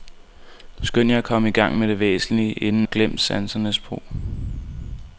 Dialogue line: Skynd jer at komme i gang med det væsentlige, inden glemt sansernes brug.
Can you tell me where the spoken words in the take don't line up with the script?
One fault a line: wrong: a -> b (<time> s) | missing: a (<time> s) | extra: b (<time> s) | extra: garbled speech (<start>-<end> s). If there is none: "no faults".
no faults